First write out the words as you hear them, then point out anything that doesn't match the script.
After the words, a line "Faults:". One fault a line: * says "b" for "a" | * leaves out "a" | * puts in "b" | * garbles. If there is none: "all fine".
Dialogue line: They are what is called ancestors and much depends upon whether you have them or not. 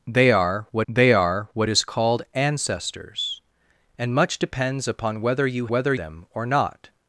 They are what they are what is called ancestors and much depends upon whether you whether them or not.
Faults:
* puts in "they are what"
* says "whether" for "have"